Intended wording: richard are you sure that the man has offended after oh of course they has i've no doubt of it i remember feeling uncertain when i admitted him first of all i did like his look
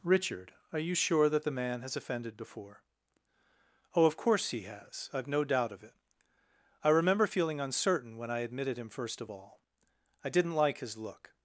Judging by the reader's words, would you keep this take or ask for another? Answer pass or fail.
fail